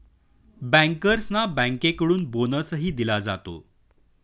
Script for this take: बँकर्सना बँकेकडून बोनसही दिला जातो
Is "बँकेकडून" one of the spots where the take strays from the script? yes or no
no